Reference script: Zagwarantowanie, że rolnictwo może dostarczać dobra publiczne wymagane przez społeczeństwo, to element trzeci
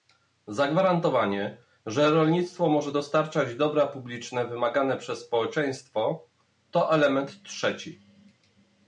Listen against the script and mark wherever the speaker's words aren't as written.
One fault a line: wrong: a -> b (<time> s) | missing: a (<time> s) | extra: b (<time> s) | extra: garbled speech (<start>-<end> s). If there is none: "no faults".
no faults